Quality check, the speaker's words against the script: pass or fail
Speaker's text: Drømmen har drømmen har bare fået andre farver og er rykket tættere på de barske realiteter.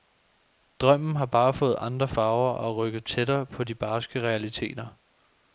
fail